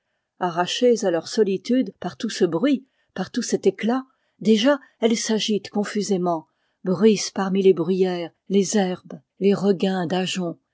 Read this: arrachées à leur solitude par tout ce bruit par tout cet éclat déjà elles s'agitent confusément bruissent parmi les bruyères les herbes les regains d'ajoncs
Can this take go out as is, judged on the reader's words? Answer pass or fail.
pass